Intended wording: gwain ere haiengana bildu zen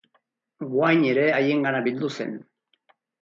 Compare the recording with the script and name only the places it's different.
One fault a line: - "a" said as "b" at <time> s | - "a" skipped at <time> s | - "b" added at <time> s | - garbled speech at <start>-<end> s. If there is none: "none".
none